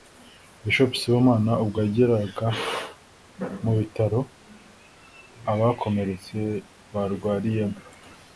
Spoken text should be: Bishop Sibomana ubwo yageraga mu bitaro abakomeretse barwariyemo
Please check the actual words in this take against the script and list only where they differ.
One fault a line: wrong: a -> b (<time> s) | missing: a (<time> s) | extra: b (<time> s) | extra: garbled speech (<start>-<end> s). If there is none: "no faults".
no faults